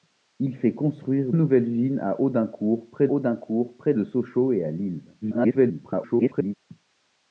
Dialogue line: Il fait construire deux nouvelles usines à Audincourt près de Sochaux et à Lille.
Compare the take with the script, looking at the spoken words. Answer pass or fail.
fail